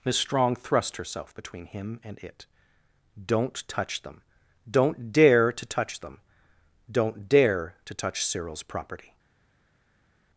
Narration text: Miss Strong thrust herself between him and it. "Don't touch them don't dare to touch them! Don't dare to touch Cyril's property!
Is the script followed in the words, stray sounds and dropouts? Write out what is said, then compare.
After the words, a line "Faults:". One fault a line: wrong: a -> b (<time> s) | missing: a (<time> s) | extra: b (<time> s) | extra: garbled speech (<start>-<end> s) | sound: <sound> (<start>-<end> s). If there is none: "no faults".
Miss Strong thrust herself between him and it. "Don't touch them don't dare to touch them! Don't dare to touch Cyril's property!
Faults:
no faults